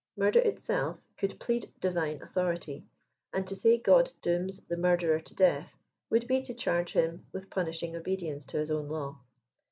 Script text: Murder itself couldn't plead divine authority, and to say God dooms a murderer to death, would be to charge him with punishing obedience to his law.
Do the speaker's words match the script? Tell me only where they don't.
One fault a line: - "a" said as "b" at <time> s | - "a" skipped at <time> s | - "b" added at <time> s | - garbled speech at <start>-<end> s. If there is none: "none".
- "couldn't" said as "could" at 1.1 s
- "a" said as "the" at 4.7 s
- "own" added at 8.7 s